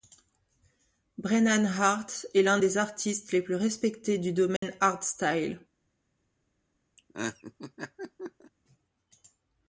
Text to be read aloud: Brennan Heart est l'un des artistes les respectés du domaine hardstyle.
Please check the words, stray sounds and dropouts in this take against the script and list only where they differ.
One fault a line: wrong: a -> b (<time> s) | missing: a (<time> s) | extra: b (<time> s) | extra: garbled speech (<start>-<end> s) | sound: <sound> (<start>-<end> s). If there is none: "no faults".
extra: plus (3.4 s)
sound: dropout (4.6-4.6 s)
sound: laugh (7.0-8.5 s)